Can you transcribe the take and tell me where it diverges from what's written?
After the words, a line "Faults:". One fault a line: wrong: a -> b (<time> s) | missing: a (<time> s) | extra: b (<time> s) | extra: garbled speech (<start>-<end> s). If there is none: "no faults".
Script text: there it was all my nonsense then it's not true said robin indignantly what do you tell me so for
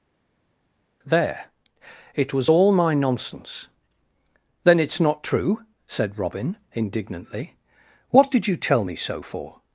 there it was all my nonsense then it's not true said robin indignantly what did you tell me so for
Faults:
wrong: do -> did (8.3 s)